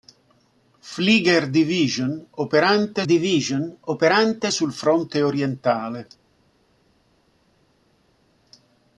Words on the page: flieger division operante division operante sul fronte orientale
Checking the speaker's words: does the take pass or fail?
pass